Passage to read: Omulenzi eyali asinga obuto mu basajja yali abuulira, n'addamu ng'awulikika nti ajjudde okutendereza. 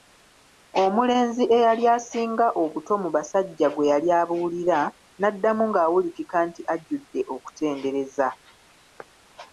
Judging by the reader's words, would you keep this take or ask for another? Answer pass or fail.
fail